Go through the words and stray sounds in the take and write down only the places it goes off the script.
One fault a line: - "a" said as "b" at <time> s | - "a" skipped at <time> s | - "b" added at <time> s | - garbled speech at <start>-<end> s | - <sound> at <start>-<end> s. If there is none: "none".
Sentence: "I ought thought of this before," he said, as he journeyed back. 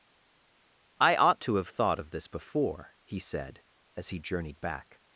- "to have" added at 1.4 s